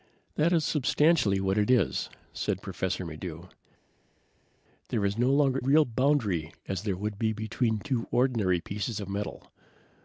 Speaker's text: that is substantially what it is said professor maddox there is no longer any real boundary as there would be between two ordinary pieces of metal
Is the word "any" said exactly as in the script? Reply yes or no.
no